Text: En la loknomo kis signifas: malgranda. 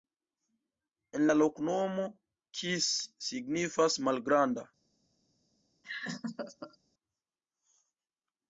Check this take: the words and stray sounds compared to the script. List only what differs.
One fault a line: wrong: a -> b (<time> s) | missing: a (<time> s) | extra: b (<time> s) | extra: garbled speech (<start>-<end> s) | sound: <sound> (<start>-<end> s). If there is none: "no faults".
sound: laugh (5.8-6.8 s)